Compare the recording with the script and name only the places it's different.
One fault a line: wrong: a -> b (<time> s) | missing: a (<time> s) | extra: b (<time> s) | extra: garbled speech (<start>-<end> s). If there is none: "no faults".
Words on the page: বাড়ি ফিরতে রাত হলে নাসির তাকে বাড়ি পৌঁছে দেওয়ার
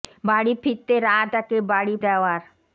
missing: হলে নাসির (1.3 s)
missing: পৌঁছে (1.9 s)